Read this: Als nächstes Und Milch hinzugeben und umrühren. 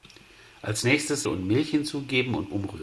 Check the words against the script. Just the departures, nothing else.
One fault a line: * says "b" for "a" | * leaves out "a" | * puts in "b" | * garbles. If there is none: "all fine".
all fine